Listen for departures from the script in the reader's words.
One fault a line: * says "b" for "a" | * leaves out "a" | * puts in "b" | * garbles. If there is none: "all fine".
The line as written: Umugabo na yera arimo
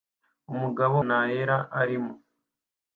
all fine